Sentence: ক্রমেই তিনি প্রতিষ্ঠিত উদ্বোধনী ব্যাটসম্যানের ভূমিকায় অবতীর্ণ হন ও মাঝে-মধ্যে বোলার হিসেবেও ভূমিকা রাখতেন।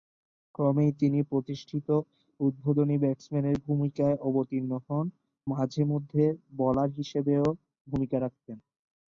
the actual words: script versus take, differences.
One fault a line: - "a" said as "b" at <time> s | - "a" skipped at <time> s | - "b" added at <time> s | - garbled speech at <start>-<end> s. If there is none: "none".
- "ও" skipped at 5.0 s